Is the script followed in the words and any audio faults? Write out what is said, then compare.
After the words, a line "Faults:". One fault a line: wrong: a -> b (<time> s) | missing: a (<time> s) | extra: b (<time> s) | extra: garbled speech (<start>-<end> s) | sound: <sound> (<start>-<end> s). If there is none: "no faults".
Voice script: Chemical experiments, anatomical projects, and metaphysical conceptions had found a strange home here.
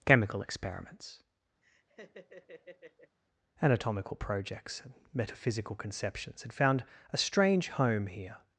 Chemical experiments, anatomical projects, and metaphysical conceptions had found a strange home here.
Faults:
sound: laugh (1.6-3.2 s)